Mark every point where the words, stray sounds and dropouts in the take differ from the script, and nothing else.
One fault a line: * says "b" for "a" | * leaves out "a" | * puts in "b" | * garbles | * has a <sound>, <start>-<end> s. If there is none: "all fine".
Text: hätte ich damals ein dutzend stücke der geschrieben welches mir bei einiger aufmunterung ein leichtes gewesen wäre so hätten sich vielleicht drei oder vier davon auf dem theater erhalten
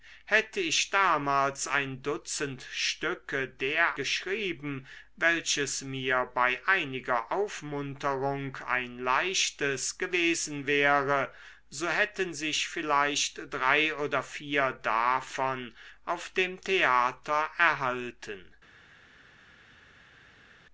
all fine